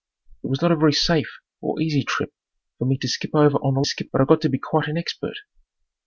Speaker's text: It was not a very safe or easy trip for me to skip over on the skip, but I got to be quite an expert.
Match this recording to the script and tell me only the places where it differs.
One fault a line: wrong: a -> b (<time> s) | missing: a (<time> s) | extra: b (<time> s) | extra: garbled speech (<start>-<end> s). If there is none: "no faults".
no faults